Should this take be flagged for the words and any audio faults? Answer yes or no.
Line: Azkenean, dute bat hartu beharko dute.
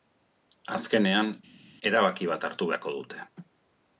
yes